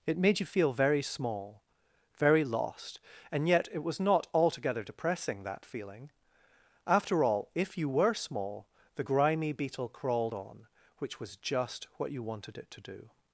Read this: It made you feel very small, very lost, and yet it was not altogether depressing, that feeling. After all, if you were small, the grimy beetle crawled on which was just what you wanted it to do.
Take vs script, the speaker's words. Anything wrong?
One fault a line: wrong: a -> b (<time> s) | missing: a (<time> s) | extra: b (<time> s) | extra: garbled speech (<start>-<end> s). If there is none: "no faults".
no faults